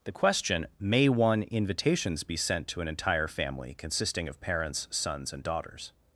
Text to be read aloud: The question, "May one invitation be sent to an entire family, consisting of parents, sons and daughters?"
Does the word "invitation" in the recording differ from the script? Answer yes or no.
yes